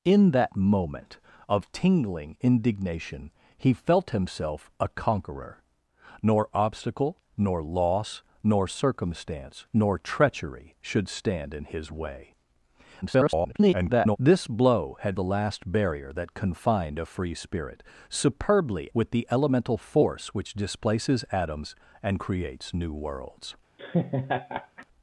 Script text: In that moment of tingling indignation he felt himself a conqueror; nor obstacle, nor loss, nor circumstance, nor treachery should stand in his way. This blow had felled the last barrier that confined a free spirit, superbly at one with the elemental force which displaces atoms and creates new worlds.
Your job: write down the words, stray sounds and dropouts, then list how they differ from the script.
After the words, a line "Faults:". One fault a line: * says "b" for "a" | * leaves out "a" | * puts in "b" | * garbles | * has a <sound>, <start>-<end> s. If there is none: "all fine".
In that moment of tingling indignation he felt himself a conqueror; nor obstacle, nor loss, nor circumstance, nor treachery should stand in his way. [garbled] This blow had the last barrier that confined a free spirit, superbly with the elemental force which displaces atoms and creates new worlds.
Faults:
* garbles
* leaves out "felled"
* leaves out "at one"
* has a laugh, 23.8-24.9 s